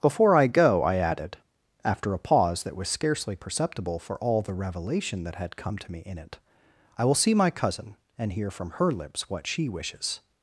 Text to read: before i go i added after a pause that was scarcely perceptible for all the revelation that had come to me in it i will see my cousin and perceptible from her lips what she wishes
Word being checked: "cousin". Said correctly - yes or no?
yes